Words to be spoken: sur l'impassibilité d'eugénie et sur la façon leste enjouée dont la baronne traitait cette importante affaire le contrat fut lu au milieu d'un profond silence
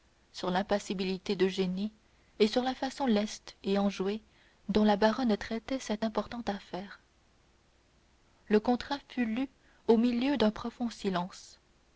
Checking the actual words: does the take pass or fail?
fail